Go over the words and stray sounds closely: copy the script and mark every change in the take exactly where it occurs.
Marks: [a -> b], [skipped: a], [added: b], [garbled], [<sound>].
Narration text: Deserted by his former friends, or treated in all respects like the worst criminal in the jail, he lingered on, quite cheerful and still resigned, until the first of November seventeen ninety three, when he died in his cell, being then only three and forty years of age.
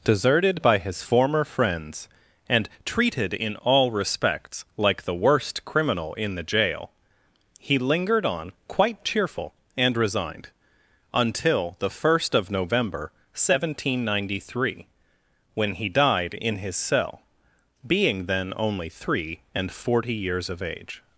Deserted by his former friends, [or -> and] treated in all respects like the worst criminal in the jail, he lingered on, quite cheerful and [skipped: still] resigned, until the first of November seventeen ninety three, when he died in his cell, being then only three and forty years of age.